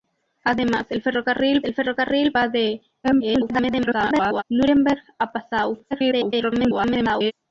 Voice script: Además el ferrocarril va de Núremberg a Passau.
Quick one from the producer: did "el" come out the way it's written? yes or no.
yes